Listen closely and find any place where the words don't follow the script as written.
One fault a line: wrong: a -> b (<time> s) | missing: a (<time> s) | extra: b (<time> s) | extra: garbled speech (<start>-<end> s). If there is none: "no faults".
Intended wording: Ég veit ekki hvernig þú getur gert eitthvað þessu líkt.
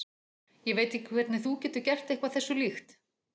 no faults